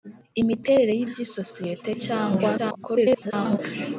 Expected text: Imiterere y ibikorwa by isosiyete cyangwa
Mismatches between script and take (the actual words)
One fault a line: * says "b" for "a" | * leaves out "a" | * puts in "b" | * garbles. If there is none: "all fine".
* leaves out "ibikorwa"
* garbles